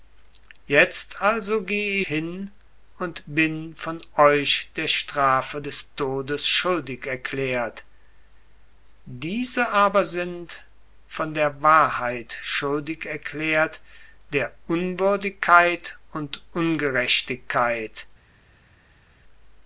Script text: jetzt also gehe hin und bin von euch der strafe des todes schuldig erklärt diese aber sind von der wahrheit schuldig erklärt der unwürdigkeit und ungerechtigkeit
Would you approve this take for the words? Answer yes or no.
yes